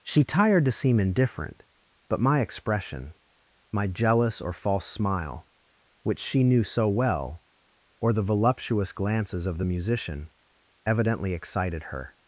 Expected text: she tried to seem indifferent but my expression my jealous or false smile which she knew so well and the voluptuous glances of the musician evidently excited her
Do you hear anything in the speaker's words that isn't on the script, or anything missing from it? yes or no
yes